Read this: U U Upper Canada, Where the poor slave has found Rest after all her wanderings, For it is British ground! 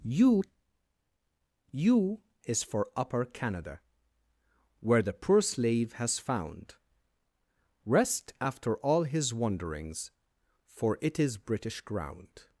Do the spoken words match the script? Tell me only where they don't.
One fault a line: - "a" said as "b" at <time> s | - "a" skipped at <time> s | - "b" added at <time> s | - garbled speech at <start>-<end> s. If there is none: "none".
- "is for" added at 2.4 s
- "her" said as "his" at 9.0 s